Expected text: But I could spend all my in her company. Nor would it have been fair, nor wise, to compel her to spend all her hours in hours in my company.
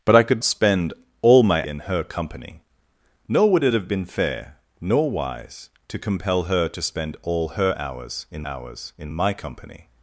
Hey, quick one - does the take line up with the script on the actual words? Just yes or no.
yes